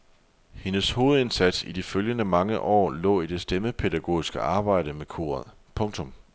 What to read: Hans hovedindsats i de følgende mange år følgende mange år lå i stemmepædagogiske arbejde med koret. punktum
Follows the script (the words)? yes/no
no